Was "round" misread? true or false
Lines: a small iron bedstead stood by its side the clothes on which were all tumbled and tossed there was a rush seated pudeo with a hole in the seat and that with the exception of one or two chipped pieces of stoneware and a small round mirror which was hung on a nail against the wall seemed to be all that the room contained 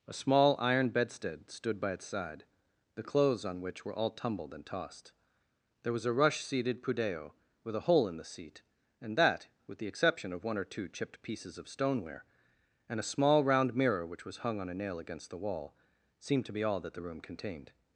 false